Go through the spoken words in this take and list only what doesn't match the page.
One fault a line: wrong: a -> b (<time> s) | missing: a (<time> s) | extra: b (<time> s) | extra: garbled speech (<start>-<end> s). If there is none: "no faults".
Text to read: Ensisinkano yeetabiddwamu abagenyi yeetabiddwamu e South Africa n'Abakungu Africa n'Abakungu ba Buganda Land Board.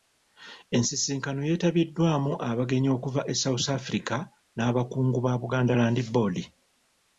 wrong: yeetabiddwamu -> okuva (3.0 s)
missing: Africa n'Abakungu (5.2 s)